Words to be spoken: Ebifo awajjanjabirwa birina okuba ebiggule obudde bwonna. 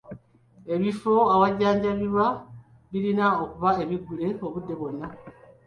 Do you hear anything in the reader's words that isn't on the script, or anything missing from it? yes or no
no